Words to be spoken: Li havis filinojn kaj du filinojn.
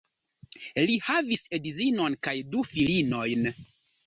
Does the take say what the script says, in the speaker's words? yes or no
no